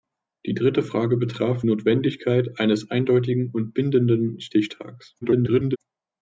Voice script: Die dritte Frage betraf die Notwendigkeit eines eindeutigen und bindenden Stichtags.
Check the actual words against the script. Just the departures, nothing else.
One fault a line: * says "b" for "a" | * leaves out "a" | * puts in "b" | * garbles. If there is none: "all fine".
* leaves out "die"
* garbles